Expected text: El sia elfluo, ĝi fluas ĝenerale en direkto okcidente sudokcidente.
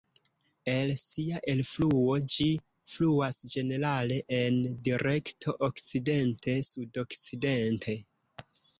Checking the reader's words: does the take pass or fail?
pass